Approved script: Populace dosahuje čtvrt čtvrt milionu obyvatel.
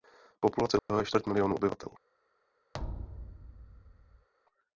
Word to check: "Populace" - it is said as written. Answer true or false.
true